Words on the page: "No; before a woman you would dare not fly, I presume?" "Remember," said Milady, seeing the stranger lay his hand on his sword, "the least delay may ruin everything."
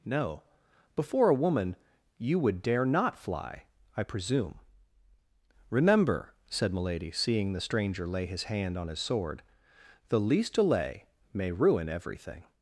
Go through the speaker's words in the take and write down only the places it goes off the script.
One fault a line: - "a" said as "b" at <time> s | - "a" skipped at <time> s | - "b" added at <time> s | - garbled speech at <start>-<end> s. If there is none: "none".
none